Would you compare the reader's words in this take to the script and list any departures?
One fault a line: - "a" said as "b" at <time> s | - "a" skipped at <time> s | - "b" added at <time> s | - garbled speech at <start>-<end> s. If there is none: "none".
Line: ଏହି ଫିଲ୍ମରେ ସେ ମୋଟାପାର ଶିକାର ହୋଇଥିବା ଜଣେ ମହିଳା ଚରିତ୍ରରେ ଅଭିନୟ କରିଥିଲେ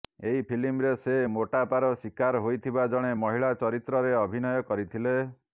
none